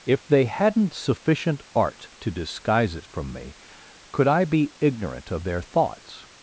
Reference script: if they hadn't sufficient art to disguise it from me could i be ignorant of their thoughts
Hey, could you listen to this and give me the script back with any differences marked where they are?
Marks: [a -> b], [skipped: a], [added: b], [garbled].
if they hadn't sufficient art to disguise it from me could i be ignorant of their thoughts